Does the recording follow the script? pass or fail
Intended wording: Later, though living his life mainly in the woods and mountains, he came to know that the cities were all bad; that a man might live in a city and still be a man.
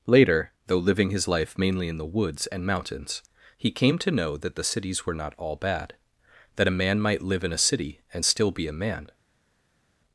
fail